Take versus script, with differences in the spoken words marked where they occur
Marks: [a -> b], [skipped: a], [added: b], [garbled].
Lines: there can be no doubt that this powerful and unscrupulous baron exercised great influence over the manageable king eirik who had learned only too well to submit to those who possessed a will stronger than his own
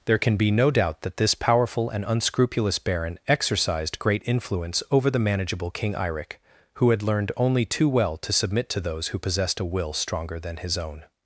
there can be no doubt that this powerful and unscrupulous baron exercised great influence over the manageable king eirik who had learned only too well to submit to those who possessed a will stronger than his own